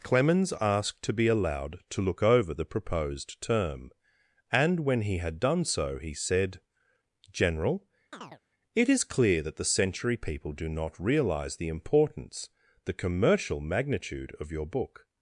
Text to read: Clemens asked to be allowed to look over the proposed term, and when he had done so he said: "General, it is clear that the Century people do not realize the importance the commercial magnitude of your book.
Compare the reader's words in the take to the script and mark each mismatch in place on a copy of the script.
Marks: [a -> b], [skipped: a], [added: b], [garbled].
Clemens asked to be allowed to look over the proposed term, and when he had done so he said: "General, it is clear that the Century people do not realize the importance the commercial magnitude of your book.